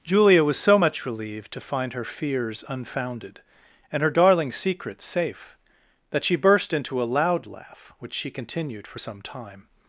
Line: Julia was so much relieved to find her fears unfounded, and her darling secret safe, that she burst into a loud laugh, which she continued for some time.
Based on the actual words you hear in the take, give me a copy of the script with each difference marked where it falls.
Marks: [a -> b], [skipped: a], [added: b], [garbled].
Julia was so much relieved to find her fears unfounded, and her darling secret safe, that she burst into a loud laugh, which she continued for some time.